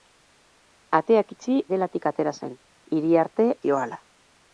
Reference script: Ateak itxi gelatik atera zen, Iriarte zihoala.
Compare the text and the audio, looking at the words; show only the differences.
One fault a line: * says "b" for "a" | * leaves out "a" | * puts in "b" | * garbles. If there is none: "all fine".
all fine